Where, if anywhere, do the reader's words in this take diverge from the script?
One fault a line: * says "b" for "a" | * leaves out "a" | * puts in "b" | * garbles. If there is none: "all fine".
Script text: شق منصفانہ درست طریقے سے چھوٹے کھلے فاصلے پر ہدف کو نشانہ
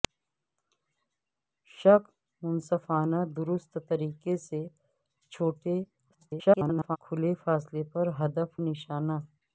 * garbles
* leaves out "کو"